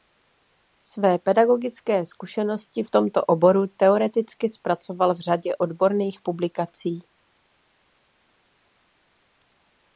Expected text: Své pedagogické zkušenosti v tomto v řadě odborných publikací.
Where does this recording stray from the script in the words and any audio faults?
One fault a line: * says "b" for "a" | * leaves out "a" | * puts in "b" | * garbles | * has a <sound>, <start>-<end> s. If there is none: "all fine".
* puts in "oboru teoreticky zpracoval"